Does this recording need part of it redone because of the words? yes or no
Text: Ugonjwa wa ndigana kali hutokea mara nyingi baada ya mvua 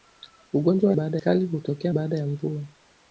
yes